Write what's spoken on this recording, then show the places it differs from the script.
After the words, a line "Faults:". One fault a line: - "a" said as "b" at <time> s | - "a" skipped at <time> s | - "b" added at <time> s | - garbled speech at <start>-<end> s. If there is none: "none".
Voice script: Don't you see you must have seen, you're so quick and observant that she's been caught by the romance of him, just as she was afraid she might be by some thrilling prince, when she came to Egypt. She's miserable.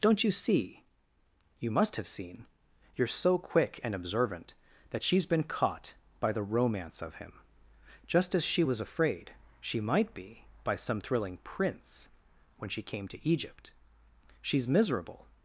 Don't you see you must have seen, you're so quick and observant that she's been caught by the romance of him, just as she was afraid she might be by some thrilling prince, when she came to Egypt. She's miserable.
Faults:
none